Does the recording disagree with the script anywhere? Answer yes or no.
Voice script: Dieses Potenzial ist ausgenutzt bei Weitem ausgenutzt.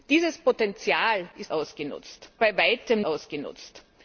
no